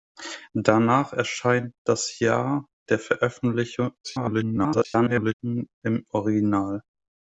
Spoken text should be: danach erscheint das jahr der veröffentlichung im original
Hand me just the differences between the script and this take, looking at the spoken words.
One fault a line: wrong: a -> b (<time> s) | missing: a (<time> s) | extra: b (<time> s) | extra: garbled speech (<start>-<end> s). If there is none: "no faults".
extra: garbled speech (4.0-5.3 s)